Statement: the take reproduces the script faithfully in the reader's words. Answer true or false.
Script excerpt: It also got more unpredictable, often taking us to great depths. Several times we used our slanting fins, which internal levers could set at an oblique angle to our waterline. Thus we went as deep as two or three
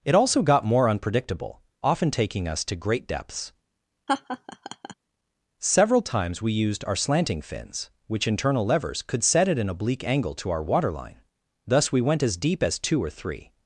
true